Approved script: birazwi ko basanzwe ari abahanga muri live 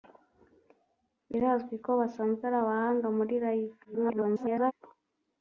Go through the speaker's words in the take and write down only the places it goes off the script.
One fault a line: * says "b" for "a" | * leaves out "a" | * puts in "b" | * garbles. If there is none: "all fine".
* garbles